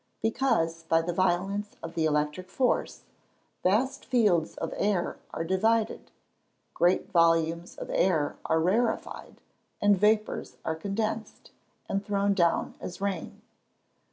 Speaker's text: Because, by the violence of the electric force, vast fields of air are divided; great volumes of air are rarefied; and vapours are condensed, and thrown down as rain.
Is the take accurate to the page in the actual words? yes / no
yes